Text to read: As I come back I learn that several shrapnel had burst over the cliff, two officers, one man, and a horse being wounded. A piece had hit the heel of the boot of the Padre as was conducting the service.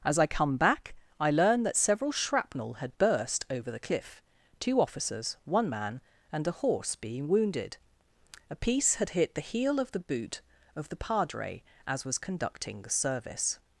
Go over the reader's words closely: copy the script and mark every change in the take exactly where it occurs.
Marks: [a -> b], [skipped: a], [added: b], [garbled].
As I come back I learn that several shrapnel had burst over the cliff, two officers, one man, and a horse being wounded. A piece had hit the heel of the boot of the Padre as was conducting the service.